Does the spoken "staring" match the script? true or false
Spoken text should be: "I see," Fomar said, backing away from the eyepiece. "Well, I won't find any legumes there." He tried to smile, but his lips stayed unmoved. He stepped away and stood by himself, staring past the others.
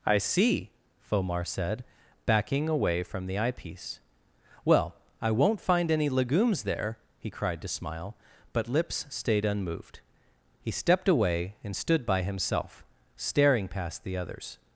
true